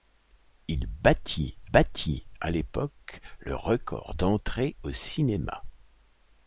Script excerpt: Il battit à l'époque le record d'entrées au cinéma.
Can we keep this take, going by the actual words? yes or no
no